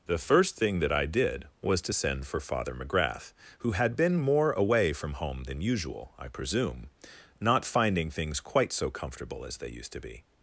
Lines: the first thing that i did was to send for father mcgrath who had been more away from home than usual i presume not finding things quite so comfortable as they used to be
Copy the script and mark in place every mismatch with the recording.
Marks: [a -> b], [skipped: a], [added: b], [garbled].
the first thing that i did was to send for father mcgrath who had been more away from home than usual i presume not finding things quite so comfortable as they used to be